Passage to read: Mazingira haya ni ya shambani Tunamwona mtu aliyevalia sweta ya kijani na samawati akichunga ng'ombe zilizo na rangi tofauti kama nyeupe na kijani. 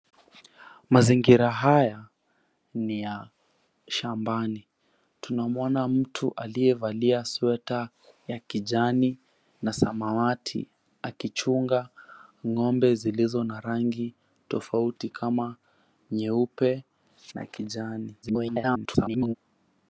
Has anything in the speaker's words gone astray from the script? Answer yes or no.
yes